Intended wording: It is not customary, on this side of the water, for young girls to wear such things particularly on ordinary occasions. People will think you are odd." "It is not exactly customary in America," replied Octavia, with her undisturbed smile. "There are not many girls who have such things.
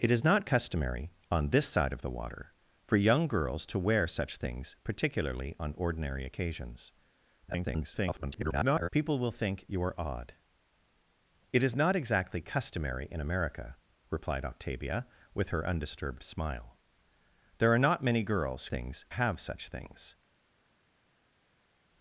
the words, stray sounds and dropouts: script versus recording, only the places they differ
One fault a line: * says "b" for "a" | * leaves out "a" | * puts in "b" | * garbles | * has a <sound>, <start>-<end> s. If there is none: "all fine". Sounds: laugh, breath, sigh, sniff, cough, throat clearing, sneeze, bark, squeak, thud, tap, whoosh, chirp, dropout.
* garbles
* says "things" for "who"